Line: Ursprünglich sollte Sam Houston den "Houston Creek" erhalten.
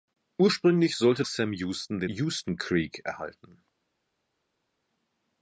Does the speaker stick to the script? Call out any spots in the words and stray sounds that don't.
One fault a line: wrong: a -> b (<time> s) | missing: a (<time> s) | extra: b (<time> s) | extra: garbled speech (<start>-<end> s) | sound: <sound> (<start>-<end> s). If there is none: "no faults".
no faults